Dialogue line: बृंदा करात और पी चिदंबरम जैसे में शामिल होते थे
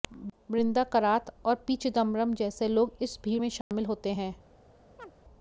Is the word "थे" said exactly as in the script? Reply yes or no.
no